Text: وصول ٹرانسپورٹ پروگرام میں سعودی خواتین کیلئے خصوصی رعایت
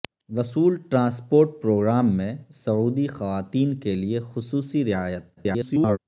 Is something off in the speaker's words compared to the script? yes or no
yes